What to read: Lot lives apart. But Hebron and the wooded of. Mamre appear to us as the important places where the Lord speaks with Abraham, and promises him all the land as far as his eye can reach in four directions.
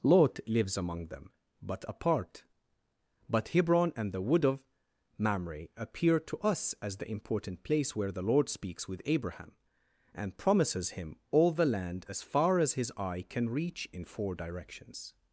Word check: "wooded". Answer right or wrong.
wrong